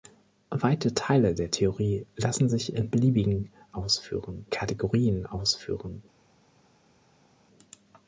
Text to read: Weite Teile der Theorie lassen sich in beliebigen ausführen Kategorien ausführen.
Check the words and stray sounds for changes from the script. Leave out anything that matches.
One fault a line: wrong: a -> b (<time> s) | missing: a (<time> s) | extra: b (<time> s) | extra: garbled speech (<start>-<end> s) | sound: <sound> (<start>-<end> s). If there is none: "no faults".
no faults